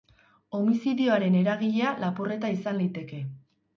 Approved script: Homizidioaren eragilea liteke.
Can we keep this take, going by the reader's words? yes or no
no